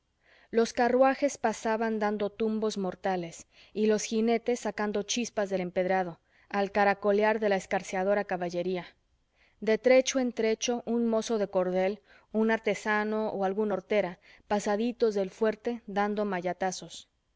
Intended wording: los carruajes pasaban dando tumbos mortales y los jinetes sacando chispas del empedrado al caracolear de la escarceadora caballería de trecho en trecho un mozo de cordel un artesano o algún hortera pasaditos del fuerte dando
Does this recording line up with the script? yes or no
yes